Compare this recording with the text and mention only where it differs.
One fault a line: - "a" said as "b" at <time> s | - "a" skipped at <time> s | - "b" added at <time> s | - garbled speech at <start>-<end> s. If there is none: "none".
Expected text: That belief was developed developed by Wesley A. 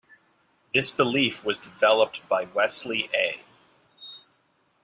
- "That" said as "This" at 0.7 s
- "developed" skipped at 2.3 s